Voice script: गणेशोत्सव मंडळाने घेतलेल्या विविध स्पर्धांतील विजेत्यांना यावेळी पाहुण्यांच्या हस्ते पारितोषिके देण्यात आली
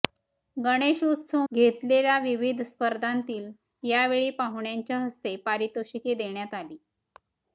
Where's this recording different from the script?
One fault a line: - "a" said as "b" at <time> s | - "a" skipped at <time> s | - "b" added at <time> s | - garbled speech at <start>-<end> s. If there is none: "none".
- "मंडळाने" skipped at 1.4 s
- "विजेत्यांना" skipped at 3.5 s